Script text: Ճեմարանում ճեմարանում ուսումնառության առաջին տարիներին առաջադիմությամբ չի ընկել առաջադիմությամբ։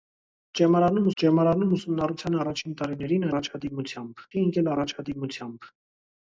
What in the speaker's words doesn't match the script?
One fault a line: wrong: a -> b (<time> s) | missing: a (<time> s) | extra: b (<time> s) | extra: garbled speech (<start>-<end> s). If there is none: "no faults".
no faults